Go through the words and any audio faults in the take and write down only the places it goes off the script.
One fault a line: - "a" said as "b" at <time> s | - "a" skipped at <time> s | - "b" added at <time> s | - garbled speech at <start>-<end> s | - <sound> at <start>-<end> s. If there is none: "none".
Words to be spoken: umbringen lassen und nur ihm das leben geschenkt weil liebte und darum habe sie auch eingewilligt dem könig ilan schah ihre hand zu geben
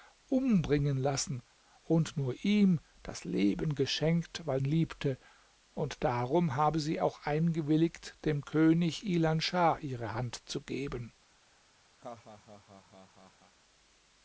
- laugh at 12.0-13.5 s